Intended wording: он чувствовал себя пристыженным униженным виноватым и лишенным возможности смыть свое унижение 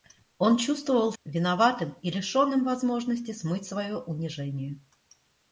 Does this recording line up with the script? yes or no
no